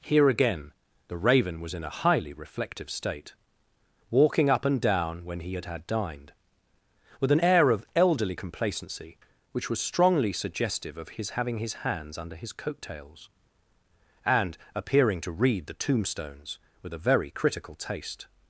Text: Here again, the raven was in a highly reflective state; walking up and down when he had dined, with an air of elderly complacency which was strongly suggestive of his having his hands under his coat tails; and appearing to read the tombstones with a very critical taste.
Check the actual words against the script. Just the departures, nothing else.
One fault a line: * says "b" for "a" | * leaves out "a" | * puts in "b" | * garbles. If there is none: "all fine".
* puts in "had"